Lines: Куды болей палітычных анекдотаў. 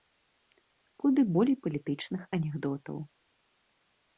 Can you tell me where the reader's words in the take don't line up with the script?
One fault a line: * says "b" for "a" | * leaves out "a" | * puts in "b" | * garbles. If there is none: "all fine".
all fine